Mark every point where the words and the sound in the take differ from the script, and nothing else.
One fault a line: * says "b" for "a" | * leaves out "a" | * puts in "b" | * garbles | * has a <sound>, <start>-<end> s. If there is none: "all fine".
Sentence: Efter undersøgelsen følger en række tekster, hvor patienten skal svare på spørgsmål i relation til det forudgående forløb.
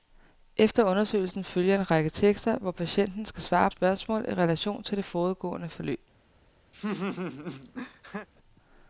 * leaves out "på"
* has a laugh, 6.7-8.3 s